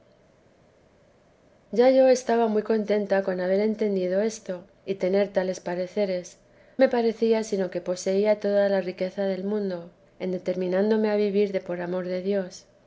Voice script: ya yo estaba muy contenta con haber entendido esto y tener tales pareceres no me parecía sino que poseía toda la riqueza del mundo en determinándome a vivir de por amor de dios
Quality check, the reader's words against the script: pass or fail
fail